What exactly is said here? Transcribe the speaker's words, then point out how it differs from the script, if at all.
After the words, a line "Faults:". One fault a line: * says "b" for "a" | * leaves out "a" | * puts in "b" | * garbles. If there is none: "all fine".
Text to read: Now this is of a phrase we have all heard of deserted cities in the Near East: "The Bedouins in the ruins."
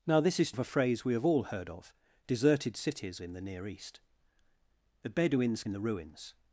Now this is of a phrase we have all heard of deserted cities in the Near East: "The Bedouins in the ruins."
Faults:
all fine